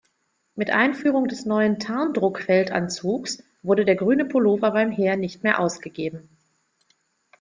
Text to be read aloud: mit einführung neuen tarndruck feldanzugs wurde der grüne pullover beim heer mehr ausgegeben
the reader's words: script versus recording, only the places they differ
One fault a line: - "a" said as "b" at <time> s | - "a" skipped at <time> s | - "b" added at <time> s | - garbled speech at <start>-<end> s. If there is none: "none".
- "des" added at 1.3 s
- "nicht" added at 5.2 s